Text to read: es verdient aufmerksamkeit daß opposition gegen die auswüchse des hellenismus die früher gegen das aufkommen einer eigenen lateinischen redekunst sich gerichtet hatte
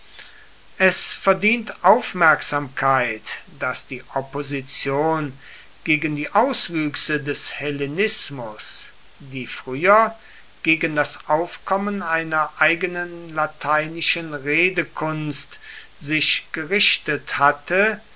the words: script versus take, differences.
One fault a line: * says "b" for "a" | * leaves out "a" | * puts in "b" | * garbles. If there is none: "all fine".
* puts in "die"